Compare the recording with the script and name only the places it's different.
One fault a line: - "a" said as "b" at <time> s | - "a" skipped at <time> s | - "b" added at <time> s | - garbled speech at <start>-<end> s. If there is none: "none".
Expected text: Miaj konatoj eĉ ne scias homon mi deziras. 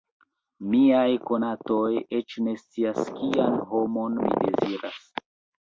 - "kian" added at 3.2 s